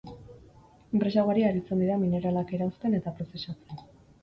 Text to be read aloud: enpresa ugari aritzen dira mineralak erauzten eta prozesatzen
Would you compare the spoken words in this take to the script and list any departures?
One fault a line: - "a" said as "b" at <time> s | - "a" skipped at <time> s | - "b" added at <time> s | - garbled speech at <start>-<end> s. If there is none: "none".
none